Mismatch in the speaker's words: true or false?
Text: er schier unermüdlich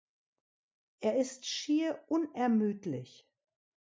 true